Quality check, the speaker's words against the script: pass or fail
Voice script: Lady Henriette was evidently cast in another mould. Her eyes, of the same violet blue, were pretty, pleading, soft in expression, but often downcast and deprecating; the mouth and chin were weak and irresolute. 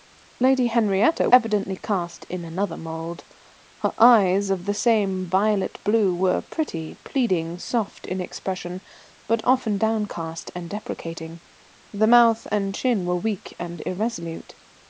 fail